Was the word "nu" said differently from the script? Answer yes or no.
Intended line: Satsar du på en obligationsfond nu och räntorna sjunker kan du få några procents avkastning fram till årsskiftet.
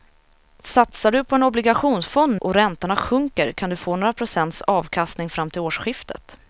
yes